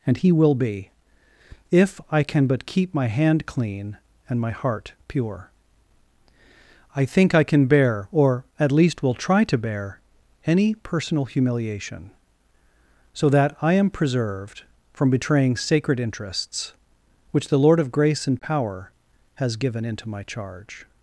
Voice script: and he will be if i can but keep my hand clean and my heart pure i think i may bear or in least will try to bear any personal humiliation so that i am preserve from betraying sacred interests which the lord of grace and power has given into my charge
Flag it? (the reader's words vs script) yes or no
yes